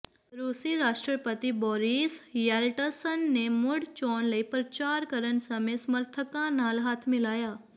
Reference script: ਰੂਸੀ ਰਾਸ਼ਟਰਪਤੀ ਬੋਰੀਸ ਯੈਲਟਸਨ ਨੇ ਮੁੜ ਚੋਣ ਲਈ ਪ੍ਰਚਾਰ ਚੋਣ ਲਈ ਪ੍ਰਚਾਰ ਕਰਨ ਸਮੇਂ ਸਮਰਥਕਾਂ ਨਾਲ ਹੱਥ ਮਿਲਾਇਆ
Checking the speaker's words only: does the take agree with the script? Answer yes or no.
no